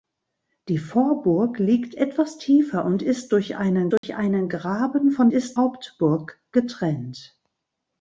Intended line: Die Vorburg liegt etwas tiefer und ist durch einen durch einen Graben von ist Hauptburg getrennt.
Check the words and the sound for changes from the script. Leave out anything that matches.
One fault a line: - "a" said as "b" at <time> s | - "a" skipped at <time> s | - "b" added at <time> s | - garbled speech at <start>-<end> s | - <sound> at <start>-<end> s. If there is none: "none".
- dropout at 4.0-4.0 s